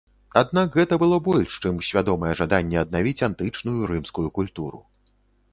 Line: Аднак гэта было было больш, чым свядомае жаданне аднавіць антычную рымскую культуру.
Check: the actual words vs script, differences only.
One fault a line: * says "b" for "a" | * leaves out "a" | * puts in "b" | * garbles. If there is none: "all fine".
* leaves out "было"